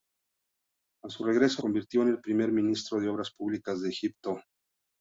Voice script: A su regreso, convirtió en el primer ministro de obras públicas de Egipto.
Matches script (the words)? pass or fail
pass